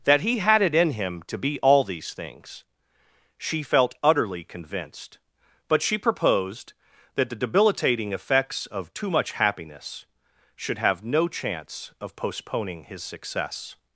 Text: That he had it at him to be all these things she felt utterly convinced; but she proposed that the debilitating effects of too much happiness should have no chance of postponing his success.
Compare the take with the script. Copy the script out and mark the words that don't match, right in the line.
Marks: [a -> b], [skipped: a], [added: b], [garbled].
That he had it [at -> in] him to be all these things she felt utterly convinced; but she proposed that the debilitating effects of too much happiness should have no chance of postponing his success.